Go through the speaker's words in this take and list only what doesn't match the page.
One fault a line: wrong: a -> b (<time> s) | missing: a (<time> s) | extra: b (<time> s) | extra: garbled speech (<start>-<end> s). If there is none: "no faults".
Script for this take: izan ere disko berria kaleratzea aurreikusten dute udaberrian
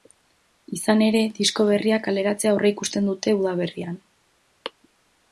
no faults